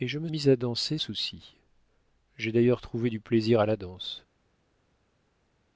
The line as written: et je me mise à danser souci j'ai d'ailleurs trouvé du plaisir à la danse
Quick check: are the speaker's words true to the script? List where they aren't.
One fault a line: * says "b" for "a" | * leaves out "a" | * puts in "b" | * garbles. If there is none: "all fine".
all fine